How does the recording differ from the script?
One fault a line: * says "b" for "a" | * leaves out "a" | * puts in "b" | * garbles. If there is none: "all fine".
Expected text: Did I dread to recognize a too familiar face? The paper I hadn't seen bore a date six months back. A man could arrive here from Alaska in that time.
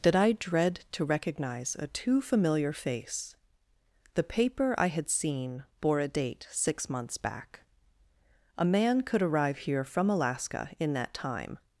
* says "had" for "hadn't"